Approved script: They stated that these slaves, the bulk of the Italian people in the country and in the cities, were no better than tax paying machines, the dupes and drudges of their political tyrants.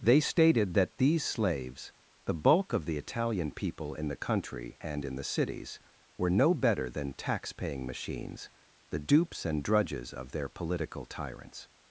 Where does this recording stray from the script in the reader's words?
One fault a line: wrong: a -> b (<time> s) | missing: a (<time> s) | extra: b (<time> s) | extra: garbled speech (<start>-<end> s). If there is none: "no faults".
no faults